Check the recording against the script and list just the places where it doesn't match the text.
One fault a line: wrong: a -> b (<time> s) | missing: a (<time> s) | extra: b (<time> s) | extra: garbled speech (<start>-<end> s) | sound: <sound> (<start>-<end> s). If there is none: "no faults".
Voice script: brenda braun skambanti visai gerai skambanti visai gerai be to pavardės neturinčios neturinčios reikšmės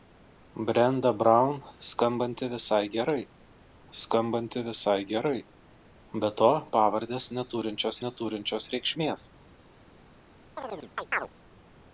sound: chirp (10.6-11.3 s)